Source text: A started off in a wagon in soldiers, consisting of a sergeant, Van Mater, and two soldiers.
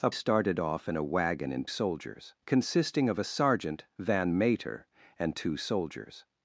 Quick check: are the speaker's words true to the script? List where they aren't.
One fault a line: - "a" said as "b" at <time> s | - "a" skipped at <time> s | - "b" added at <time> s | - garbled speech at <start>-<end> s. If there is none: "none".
none